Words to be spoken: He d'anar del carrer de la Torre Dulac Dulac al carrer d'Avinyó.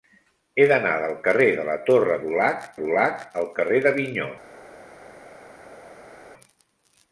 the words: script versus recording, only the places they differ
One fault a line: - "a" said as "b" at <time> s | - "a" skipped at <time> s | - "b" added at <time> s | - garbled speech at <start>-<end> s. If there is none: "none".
none